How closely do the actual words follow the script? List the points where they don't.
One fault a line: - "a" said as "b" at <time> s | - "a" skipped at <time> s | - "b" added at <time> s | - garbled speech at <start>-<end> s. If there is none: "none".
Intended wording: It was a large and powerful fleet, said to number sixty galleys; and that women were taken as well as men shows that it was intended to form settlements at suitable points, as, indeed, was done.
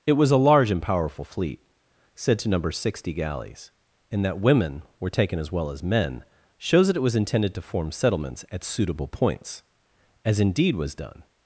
none